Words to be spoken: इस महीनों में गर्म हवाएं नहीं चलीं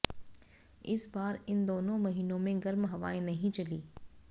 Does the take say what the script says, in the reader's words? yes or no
no